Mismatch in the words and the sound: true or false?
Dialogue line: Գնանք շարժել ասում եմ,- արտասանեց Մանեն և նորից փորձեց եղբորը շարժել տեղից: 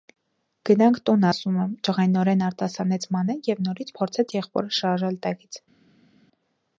true